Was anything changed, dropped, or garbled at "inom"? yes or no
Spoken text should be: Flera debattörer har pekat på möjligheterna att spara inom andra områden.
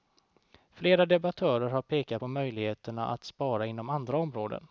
no